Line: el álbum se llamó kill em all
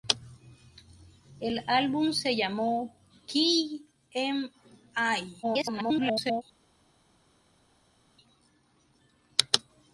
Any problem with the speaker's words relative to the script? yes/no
yes